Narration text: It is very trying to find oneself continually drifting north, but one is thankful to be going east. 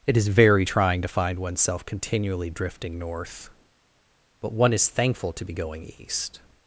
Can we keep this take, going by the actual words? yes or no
yes